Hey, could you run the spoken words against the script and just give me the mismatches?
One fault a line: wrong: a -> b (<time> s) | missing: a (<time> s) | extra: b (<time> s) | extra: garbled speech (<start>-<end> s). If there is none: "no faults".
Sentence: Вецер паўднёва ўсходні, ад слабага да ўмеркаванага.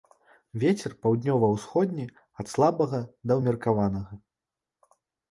no faults